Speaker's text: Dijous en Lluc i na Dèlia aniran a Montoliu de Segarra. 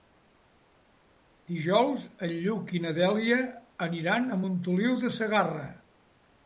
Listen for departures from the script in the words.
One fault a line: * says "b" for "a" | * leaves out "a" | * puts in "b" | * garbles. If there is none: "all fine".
all fine